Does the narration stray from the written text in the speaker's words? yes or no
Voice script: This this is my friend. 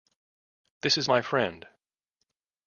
yes